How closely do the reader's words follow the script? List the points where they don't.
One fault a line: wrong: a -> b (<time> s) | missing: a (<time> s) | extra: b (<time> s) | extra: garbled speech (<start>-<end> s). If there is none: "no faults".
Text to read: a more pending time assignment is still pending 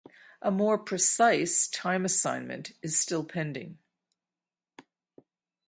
wrong: pending -> precise (0.8 s)